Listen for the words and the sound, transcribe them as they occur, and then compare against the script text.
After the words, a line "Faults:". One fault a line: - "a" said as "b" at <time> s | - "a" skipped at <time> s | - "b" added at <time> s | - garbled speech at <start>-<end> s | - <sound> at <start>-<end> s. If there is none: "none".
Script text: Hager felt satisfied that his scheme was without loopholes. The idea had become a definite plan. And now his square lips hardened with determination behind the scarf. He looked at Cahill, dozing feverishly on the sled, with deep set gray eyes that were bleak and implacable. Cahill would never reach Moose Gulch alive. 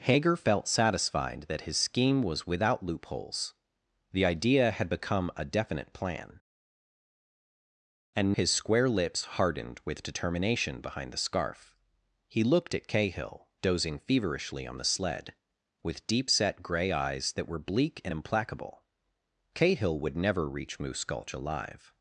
Hager felt satisfied that his scheme was without loopholes. The idea had become a definite plan. And his square lips hardened with determination behind the scarf. He looked at Cahill, dozing feverishly on the sled, with deep set gray eyes that were bleak and implacable. Cahill would never reach Moose Gulch alive.
Faults:
- "now" skipped at 8.3 s